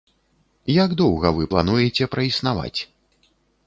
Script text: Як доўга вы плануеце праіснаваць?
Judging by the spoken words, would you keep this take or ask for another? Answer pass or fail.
pass